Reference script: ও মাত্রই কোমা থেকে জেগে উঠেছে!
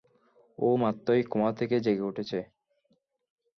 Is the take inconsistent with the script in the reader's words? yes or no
no